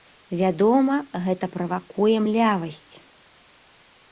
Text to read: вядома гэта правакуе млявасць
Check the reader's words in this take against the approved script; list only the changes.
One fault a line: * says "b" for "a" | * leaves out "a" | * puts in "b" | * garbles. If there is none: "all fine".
all fine